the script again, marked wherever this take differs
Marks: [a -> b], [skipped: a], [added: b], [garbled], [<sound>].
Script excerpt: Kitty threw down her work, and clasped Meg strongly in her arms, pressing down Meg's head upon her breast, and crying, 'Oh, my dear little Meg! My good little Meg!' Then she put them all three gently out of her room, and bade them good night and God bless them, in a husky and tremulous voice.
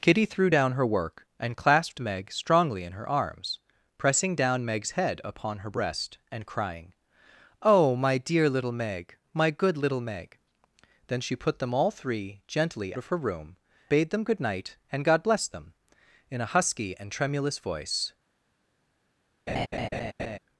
Kitty threw down her work, and clasped Meg strongly in her arms, pressing down Meg's head upon her breast, and crying, 'Oh, my dear little Meg! My good little Meg!' Then she put them all three gently [skipped: out] of her room, [skipped: and] bade them good night and God bless them, in a husky and tremulous voice. [laugh]